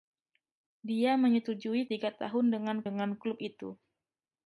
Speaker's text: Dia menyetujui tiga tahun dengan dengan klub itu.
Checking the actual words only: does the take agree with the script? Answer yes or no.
yes